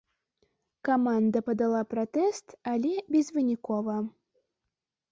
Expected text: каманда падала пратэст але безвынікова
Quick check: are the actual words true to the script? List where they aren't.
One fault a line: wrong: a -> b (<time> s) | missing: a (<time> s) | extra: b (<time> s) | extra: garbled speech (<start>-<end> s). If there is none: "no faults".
no faults